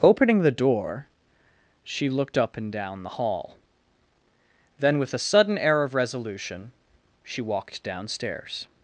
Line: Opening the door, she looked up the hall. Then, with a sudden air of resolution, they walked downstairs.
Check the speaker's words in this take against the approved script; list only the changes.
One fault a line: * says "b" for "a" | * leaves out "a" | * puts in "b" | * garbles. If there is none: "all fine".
* puts in "and down"
* says "she" for "they"